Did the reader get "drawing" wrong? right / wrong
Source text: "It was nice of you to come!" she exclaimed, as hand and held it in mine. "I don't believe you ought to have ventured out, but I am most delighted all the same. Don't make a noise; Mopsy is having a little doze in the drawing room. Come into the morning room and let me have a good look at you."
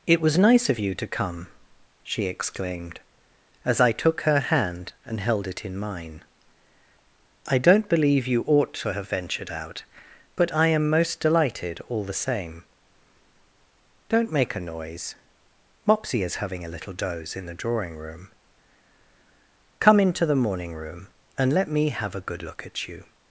right